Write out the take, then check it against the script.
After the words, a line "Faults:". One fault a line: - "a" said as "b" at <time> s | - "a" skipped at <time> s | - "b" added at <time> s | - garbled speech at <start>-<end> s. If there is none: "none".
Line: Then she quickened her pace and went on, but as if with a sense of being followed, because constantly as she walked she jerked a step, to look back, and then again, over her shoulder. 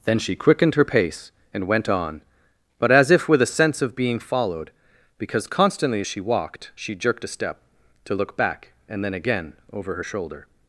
Then she quickened her pace and went on, but as if with a sense of being followed, because constantly as she walked she jerked a step, to look back, and then again, over her shoulder.
Faults:
none